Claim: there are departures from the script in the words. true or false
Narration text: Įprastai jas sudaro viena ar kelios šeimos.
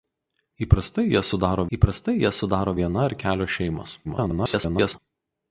true